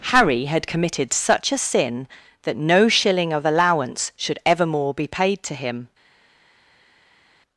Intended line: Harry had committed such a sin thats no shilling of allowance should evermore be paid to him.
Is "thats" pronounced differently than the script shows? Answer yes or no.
yes